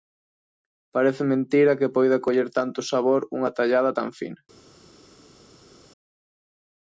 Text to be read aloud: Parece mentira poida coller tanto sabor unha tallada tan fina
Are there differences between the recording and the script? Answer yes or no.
yes